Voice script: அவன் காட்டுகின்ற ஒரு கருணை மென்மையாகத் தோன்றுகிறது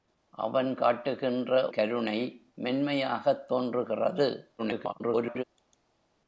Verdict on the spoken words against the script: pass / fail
fail